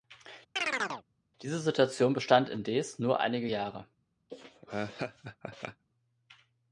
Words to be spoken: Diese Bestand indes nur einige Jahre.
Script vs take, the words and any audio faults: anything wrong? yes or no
yes